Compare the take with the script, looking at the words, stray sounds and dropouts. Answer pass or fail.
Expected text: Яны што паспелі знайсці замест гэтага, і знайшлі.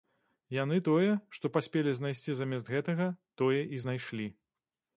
fail